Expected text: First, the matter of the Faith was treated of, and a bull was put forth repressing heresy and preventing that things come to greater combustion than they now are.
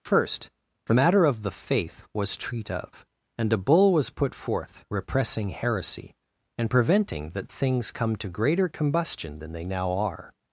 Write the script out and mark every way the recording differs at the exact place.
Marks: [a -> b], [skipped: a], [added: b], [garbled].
First, the matter of the Faith was [treated -> treat] of, and a bull was put forth repressing heresy and preventing that things come to greater combustion than they now are.